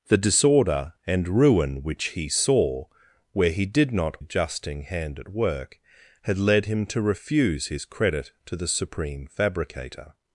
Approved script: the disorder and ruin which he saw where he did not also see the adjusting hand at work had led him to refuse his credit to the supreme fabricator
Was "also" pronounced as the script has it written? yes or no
no